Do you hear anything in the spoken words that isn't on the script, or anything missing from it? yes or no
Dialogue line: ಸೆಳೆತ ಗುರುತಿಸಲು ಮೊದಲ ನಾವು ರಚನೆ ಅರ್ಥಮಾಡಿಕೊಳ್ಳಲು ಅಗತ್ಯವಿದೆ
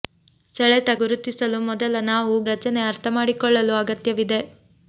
no